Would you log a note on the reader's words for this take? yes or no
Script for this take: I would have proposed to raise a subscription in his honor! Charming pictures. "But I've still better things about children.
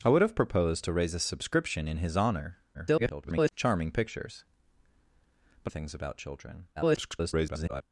yes